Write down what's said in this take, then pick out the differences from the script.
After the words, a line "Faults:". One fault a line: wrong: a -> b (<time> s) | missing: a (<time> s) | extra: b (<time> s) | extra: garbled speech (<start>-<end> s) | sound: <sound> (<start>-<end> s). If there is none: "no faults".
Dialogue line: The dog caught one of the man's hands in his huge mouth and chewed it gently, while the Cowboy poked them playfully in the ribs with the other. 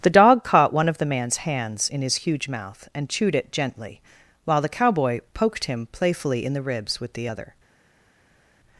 The dog caught one of the man's hands in his huge mouth and chewed it gently, while the Cowboy poked him playfully in the ribs with the other.
Faults:
wrong: them -> him (5.6 s)